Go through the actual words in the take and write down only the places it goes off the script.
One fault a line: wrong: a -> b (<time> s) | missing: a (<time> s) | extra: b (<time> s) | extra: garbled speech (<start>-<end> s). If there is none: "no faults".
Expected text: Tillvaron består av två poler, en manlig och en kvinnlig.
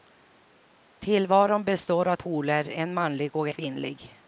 missing: två (2.1 s)
missing: en (3.5 s)